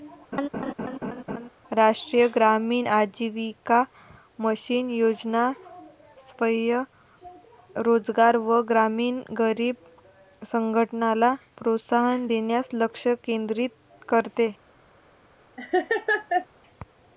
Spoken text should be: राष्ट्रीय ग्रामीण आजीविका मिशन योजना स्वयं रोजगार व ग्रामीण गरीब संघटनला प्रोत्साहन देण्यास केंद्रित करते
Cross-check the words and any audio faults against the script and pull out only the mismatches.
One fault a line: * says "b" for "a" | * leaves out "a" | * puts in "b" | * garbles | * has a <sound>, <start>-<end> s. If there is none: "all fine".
* has a laugh, 0.3-1.5 s
* puts in "लक्ष"
* has a laugh, 15.6-16.5 s